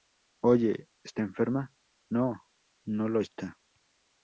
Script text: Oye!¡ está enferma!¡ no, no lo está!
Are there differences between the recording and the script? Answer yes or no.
no